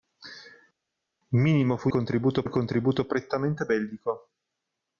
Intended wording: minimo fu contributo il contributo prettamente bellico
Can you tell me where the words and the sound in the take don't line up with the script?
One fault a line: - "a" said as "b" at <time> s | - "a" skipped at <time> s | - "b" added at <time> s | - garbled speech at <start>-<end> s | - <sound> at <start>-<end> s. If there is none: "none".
none